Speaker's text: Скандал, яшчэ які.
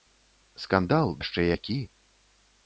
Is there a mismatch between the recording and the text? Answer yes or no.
no